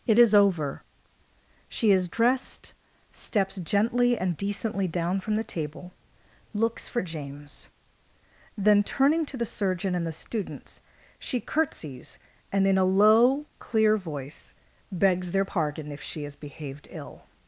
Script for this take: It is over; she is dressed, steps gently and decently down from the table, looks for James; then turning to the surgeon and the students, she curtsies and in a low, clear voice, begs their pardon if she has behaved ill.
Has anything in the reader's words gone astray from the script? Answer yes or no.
no